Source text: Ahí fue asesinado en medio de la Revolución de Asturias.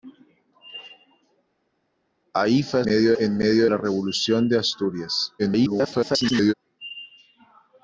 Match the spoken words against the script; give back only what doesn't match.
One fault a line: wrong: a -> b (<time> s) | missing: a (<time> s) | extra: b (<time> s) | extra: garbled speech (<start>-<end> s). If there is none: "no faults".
wrong: asesinado -> medio (2.8 s)
missing: de (3.7 s)
extra: garbled speech (5.4-6.5 s)